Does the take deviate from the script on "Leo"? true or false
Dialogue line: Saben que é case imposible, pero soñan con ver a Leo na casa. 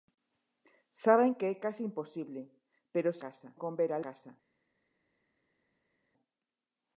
true